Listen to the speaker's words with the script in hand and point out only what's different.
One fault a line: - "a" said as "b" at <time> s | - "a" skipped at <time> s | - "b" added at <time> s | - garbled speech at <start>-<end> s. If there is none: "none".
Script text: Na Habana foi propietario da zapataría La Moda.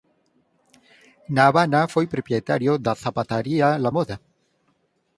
none